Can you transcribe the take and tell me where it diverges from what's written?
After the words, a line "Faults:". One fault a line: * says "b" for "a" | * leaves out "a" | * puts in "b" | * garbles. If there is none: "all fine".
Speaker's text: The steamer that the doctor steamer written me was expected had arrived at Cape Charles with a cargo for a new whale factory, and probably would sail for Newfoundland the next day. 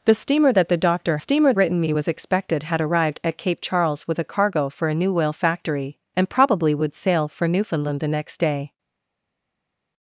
The steamer that the doctor steamer written me was expected had arrived at Cape Charles with a cargo for a new whale factory, and probably would sail for Newfoundland the next day.
Faults:
all fine